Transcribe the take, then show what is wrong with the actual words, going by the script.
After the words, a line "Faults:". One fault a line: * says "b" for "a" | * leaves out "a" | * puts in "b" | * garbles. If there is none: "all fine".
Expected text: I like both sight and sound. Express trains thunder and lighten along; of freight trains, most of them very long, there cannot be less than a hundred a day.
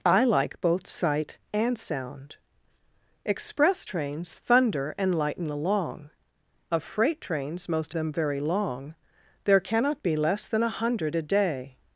I like both sight and sound. Express trains thunder and lighten along; of freight trains, most them very long, there cannot be less than a hundred a day.
Faults:
* leaves out "of"